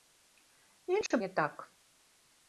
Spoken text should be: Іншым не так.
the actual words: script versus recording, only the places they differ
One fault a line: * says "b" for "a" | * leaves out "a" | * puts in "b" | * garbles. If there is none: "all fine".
all fine